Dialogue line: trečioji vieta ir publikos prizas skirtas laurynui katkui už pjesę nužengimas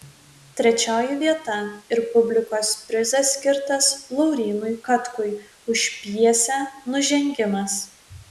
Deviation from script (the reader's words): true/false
false